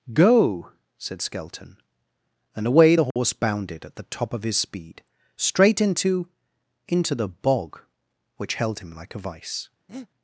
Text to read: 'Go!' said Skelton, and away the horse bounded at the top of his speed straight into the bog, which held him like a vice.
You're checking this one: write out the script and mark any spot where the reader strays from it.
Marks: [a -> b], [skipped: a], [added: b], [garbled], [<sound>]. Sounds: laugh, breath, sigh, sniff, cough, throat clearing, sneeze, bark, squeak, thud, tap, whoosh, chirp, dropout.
'Go!' said Skelton, and away the horse [dropout] bounded at the top of his speed straight into [added: into] the bog, which held him like a vice. [breath]